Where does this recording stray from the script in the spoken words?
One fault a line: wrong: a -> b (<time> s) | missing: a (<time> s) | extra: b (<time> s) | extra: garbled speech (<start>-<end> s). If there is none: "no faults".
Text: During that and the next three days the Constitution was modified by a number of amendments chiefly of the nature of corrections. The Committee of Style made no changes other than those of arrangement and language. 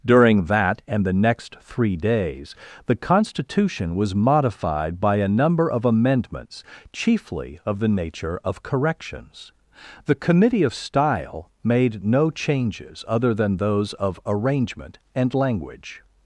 no faults